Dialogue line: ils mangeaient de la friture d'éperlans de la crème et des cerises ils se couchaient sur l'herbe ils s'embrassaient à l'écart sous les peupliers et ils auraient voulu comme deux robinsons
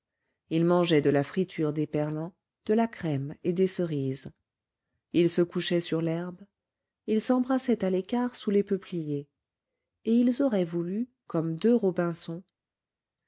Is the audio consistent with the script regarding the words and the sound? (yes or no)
yes